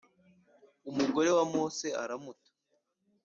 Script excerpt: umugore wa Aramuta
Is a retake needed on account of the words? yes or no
yes